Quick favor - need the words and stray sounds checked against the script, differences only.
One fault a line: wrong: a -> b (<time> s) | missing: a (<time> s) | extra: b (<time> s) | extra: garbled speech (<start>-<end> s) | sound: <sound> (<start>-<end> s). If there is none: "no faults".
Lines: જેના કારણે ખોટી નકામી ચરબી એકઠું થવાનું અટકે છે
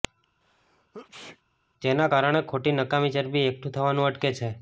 sound: sneeze (0.4-1.4 s)